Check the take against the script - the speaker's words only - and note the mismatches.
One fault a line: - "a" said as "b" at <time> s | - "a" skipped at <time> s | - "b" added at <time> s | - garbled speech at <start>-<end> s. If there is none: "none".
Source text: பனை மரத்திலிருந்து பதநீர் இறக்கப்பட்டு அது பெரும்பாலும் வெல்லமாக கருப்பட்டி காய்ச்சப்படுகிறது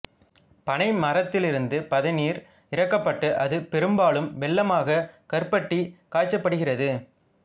none